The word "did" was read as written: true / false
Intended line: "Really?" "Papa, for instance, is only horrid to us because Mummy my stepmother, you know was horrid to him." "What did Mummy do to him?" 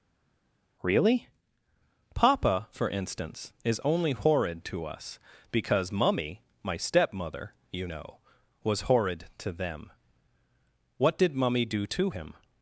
true